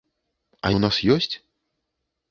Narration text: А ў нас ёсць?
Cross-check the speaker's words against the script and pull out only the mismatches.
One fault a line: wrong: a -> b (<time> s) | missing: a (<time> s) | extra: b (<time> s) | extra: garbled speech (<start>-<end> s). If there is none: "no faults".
no faults